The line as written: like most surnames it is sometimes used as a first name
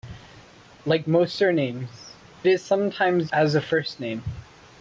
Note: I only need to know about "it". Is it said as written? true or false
false